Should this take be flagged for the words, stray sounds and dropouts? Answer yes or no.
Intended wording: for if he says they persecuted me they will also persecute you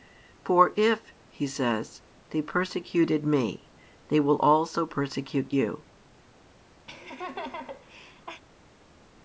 yes